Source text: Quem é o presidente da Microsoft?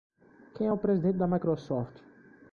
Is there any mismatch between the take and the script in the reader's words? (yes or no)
no